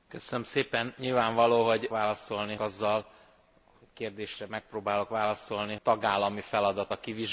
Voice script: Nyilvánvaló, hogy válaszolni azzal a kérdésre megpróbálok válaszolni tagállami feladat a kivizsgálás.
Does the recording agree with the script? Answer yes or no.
yes